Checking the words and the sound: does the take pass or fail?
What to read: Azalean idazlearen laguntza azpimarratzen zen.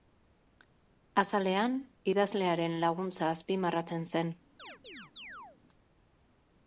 fail